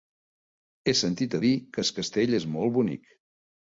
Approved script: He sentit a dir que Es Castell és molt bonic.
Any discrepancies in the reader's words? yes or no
no